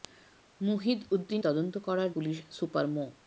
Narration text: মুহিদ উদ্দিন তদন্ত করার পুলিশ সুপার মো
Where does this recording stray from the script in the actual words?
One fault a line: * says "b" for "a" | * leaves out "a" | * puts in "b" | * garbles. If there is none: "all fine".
all fine